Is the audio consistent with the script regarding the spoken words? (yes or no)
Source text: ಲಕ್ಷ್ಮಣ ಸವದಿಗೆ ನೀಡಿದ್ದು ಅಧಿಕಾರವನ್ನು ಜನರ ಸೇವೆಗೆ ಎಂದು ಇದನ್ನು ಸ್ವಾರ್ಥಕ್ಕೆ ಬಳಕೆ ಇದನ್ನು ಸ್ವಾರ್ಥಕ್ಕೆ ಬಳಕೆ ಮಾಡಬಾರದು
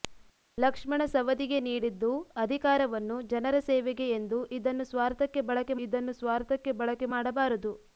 yes